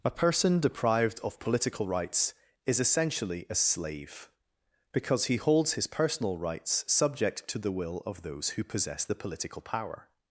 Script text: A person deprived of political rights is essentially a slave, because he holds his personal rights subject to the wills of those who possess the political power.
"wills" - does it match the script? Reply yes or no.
no